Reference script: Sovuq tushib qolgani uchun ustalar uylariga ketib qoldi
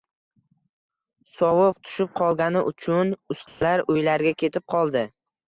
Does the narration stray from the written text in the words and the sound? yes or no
yes